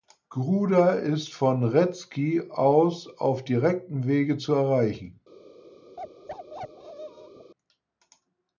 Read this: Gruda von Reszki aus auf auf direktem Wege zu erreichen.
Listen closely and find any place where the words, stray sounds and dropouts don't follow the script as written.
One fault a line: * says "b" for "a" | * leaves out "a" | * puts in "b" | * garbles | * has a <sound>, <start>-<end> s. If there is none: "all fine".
* puts in "ist"
* leaves out "auf"
* has a bark, 6.0-7.5 s